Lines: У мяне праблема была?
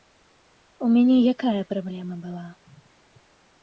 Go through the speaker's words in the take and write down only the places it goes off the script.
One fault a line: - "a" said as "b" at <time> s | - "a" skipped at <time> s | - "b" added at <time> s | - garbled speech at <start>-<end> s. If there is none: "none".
- "якая" added at 1.3 s